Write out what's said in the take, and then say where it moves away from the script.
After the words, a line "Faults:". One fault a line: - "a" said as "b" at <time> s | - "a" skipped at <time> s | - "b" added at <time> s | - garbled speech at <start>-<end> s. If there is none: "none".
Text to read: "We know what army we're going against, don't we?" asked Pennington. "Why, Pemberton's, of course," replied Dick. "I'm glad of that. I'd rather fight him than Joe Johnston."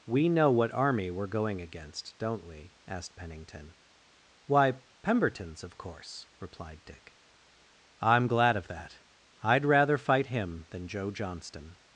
"We know what army we're going against, don't we?" asked Pennington. "Why, Pemberton's, of course," replied Dick. "I'm glad of that. I'd rather fight him than Joe Johnston."
Faults:
none